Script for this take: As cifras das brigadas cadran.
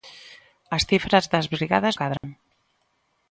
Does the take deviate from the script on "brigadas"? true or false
false